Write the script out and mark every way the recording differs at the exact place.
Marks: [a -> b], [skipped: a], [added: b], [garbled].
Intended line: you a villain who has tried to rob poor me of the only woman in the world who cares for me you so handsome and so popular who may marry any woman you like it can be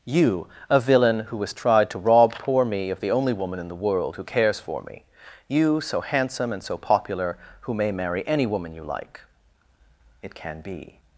you a villain who has tried to rob poor me of the only woman in the world who cares for me you so handsome and so popular who may marry any woman you like it can be